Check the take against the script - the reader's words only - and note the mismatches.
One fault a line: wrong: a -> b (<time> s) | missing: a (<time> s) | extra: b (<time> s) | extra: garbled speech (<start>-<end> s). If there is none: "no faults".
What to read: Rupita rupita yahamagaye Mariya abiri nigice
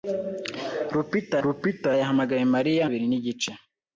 no faults